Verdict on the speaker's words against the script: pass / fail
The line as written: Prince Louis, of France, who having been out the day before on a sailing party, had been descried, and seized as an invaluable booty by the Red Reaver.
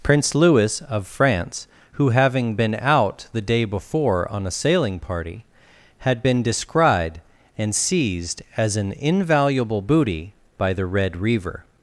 pass